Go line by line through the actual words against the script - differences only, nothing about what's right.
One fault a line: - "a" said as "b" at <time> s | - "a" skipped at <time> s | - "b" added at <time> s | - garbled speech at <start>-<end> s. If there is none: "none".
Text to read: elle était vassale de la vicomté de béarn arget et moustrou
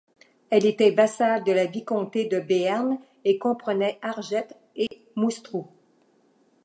- "et comprenait" added at 3.2 s